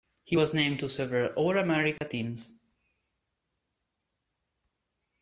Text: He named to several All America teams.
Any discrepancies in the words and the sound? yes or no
yes